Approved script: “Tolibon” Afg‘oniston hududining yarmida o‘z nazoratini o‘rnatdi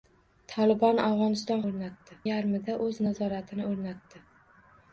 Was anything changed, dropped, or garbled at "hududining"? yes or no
yes